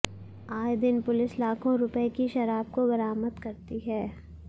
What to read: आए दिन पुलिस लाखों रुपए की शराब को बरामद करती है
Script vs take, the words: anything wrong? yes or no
no